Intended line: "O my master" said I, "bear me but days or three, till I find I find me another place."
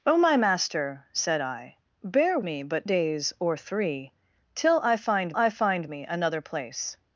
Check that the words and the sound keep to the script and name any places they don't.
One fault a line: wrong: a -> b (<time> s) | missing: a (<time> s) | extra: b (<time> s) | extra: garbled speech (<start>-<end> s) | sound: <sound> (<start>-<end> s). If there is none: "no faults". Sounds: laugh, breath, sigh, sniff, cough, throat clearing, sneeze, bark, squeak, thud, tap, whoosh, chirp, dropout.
no faults